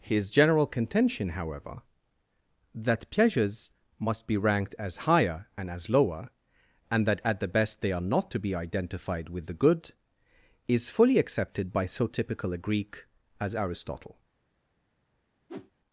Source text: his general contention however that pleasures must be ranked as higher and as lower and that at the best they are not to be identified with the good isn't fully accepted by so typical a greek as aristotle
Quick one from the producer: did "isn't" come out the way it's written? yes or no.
no